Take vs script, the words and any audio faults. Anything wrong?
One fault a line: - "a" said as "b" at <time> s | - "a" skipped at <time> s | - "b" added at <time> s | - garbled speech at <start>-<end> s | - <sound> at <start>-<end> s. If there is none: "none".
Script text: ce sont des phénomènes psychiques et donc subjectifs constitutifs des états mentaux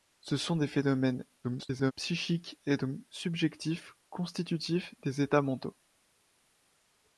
- garbled speech at 1.4-1.9 s